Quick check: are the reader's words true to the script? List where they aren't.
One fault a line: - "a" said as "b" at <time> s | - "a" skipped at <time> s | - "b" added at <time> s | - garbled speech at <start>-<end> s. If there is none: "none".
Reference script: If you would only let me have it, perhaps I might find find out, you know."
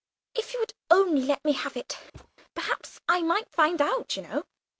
- "find" skipped at 3.8 s